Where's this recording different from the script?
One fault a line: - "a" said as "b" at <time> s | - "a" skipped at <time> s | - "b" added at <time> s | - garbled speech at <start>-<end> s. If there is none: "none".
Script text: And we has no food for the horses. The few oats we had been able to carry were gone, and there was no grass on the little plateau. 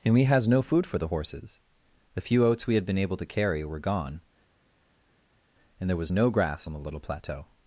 none